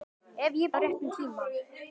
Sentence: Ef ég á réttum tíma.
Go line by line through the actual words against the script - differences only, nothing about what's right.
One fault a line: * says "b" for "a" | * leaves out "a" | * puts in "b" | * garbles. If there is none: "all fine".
all fine